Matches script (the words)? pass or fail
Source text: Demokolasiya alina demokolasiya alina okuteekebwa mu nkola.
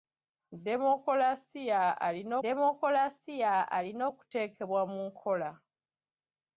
pass